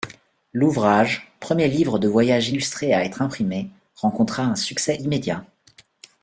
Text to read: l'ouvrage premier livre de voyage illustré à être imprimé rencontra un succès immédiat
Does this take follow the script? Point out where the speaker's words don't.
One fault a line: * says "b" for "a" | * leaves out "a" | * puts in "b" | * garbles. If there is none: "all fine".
all fine